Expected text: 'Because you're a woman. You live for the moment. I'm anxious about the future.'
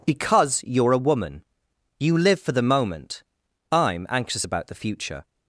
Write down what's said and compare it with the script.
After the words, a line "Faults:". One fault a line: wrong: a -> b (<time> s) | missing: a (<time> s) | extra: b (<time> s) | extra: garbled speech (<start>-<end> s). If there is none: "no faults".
'Because you're a woman. You live for the moment. I'm anxious about the future.'
Faults:
no faults